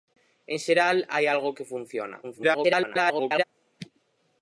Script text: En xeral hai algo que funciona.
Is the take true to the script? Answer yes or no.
no